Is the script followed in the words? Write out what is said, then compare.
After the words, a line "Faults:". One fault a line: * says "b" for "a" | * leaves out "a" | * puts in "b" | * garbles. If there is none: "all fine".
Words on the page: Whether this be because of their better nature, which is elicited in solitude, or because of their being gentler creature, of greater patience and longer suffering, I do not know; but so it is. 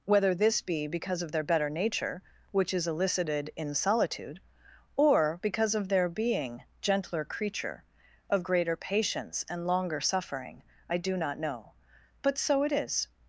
Whether this be because of their better nature, which is elicited in solitude, or because of their being gentler creature, of greater patience and longer suffering, I do not know; but so it is.
Faults:
all fine